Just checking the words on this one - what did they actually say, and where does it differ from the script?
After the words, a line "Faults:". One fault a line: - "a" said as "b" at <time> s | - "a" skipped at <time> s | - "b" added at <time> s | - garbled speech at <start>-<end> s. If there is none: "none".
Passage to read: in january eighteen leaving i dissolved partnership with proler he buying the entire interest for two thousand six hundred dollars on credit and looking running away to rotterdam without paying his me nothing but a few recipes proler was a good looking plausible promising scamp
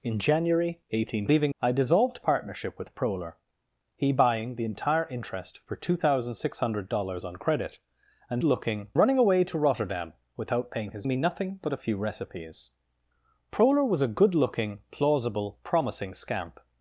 in january eighteen leaving i dissolved partnership with proler he buying the entire interest for two thousand six hundred dollars on credit and looking running away to rotterdam without paying his me nothing but a few recipes proler was a good looking plausible promising scamp
Faults:
none